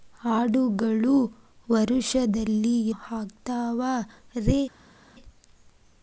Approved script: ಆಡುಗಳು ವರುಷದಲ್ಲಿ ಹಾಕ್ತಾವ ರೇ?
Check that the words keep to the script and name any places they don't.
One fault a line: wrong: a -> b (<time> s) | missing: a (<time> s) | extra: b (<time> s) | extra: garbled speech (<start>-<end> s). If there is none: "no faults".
no faults